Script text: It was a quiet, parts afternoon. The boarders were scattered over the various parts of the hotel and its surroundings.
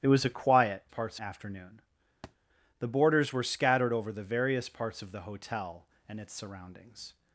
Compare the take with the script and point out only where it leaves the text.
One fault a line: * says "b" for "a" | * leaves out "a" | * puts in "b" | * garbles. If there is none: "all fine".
all fine